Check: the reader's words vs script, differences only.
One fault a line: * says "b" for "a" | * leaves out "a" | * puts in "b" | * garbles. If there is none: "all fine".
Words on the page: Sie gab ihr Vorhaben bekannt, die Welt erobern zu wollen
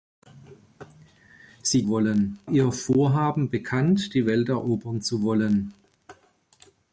* says "wollen" for "gab"